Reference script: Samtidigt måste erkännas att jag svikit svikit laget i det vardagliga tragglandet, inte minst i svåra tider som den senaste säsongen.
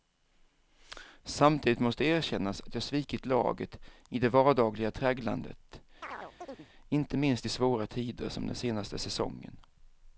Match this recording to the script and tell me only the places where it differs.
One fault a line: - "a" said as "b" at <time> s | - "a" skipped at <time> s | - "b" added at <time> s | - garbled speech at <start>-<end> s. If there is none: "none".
- "svikit" skipped at 3.2 s